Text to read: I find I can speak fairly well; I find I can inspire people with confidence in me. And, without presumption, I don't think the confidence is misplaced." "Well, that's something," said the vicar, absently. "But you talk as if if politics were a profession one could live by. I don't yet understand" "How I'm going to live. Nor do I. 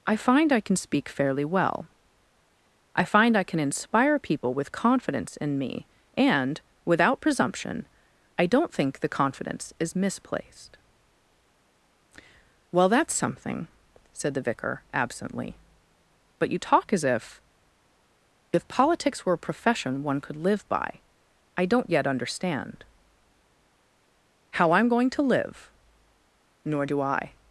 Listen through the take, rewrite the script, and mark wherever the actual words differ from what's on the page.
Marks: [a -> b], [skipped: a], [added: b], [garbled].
I find I can speak fairly well; I find I can inspire people with confidence in me. And, without presumption, I don't think the confidence is misplaced." "Well, that's something," said the vicar, absently. "But you talk as if if politics were a profession one could live by. I don't yet understand" "How I'm going to live. Nor do I.